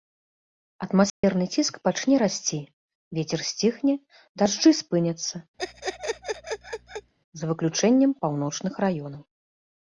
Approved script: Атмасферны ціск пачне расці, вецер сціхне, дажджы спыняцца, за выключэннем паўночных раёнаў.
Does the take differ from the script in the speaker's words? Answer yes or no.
no